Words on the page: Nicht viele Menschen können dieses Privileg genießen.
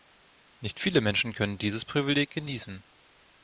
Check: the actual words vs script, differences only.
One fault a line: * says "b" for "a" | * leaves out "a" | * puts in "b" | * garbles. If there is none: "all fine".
all fine